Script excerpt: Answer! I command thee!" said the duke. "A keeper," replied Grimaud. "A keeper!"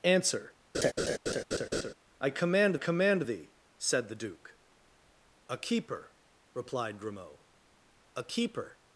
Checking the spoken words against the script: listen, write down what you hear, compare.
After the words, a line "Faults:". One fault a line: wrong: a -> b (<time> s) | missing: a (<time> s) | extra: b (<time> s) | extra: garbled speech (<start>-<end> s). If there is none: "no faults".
Answer! I command command thee!" said the duke. "A keeper," replied Grimaud. "A keeper!"
Faults:
extra: command (2.7 s)